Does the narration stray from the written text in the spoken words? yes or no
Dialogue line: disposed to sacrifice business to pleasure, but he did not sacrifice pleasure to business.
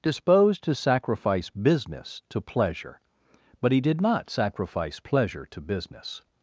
no